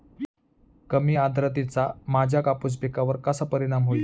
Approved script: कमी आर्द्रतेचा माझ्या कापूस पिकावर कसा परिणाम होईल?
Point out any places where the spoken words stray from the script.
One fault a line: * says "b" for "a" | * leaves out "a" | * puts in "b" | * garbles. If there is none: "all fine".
all fine